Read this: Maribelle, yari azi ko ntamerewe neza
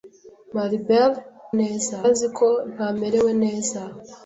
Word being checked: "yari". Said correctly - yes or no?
no